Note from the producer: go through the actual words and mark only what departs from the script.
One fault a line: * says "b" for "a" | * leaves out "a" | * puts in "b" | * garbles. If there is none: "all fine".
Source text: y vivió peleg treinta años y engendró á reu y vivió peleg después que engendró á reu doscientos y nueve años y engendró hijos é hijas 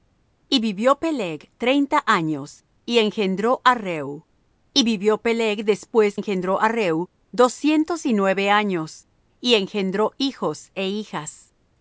* leaves out "que"